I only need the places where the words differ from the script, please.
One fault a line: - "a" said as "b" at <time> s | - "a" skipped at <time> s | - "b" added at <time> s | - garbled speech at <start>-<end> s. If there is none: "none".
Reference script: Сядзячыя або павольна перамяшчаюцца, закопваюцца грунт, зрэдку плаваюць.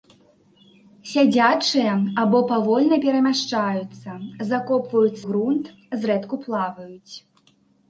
none